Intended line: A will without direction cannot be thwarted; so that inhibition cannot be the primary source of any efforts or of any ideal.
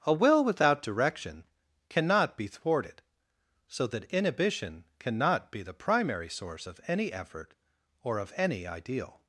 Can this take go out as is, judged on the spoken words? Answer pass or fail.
fail